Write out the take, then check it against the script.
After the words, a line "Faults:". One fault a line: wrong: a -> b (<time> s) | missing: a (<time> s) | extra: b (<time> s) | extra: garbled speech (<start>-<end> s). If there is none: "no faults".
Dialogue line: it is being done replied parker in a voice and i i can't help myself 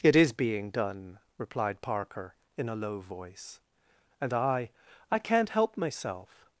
it is being done replied parker in a low voice and i i can't help myself
Faults:
extra: low (2.8 s)